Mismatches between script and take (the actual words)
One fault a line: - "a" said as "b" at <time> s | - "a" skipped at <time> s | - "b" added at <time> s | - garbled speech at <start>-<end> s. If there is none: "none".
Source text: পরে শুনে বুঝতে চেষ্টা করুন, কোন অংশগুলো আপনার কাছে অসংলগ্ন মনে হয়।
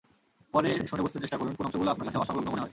none